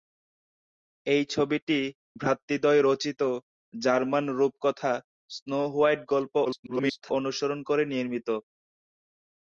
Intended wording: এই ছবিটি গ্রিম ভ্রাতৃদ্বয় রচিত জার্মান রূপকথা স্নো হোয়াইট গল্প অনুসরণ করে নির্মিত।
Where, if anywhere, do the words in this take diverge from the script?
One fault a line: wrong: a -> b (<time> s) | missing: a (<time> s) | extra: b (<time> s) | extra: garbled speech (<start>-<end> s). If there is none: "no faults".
missing: গ্রিম (1.8 s)
extra: garbled speech (6.4-7.1 s)